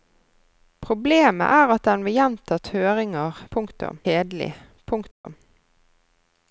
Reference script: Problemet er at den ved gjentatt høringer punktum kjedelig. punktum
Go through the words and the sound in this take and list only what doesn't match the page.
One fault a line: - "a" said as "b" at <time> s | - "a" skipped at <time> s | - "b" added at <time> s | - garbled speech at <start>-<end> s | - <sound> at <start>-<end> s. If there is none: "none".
- dropout at 5.1-5.2 s